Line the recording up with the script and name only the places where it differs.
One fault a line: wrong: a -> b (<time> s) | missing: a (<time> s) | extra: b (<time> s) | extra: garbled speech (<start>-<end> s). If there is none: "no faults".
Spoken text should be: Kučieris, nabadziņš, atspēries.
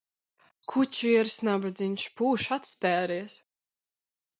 extra: pūš (2.2 s)